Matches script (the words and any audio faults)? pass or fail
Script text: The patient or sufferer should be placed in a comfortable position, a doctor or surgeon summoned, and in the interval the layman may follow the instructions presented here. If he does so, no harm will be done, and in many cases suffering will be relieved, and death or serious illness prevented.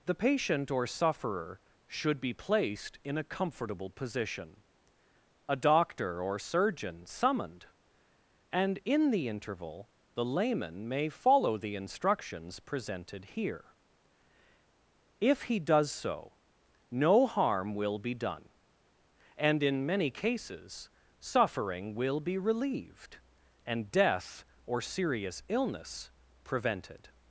pass